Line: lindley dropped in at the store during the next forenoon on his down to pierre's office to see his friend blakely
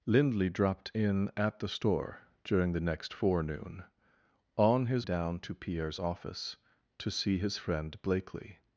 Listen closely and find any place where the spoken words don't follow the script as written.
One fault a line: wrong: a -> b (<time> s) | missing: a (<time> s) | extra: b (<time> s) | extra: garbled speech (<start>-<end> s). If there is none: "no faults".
no faults